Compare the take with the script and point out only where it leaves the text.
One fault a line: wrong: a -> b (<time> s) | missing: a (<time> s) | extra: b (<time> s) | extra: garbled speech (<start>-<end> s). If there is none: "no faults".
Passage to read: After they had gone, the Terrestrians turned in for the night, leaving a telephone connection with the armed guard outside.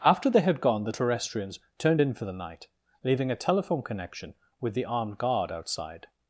no faults